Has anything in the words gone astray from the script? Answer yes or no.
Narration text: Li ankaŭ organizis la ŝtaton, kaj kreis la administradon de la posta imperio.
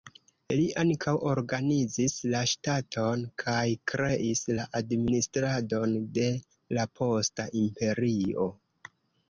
no